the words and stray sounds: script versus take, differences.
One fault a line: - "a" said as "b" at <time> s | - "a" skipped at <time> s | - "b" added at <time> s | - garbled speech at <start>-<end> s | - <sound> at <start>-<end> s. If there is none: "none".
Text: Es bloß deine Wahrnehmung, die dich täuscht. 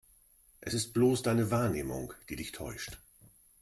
- "ist" added at 0.7 s